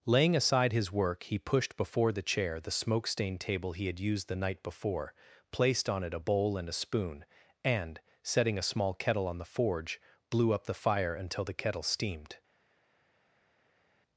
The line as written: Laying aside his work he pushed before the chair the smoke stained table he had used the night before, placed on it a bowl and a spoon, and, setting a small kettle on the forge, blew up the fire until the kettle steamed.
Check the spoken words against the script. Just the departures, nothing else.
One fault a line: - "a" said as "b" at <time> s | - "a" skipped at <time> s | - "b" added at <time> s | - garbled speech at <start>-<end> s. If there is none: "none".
none